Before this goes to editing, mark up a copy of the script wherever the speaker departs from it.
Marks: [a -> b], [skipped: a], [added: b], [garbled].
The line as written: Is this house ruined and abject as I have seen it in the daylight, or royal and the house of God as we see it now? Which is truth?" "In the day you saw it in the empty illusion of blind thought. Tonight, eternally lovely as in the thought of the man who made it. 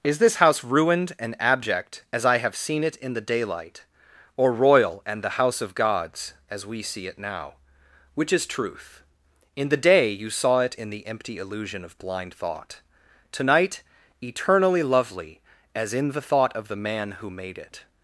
Is this house ruined and abject as I have seen it in the daylight, or royal and the house of [God -> Gods] as we see it now? Which is truth?" "In the day you saw it in the empty illusion of blind thought. Tonight, eternally lovely as in the thought of the man who made it.